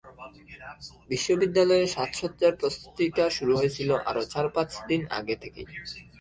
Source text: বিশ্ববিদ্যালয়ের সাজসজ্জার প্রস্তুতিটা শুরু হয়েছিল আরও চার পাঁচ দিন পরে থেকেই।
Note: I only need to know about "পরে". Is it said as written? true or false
false